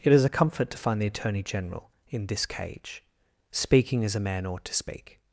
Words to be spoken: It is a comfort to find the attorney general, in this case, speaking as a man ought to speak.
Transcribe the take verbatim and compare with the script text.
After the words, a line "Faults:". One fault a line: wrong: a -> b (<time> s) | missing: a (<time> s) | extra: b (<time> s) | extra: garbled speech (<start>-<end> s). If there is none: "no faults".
It is a comfort to find the attorney general, in this cage, speaking as a man ought to speak.
Faults:
wrong: case -> cage (2.4 s)